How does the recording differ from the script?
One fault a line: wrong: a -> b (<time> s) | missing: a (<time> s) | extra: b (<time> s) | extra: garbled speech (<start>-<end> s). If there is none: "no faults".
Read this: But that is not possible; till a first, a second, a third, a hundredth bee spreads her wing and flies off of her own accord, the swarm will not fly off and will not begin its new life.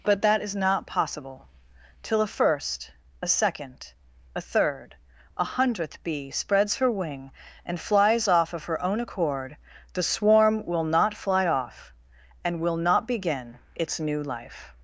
no faults